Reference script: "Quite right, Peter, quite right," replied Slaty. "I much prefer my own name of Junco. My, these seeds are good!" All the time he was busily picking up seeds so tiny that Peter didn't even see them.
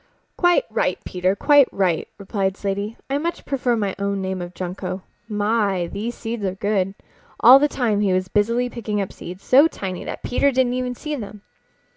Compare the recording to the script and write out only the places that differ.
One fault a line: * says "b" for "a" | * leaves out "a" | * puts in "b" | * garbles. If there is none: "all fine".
all fine